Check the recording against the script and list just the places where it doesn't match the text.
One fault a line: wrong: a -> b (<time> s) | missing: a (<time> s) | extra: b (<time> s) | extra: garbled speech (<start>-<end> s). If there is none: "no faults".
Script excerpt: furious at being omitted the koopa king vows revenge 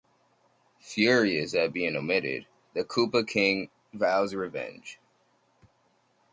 no faults